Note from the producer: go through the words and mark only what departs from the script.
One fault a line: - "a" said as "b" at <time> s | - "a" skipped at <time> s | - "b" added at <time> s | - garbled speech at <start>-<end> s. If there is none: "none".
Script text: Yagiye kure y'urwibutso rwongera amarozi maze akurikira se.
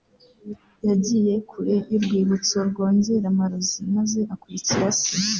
none